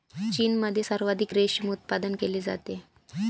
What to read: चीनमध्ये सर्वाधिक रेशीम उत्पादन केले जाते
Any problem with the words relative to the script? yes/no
no